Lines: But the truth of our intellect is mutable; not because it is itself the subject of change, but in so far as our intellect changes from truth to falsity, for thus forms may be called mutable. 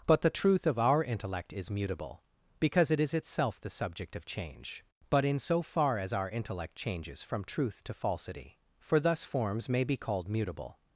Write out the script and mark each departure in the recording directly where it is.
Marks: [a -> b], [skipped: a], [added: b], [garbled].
But the truth of our intellect is mutable; [skipped: not] because it is itself the subject of change, but in so far as our intellect changes from truth to falsity, for thus forms may be called mutable.